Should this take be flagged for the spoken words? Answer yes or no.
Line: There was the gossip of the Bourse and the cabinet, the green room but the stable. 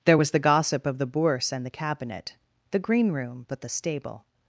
no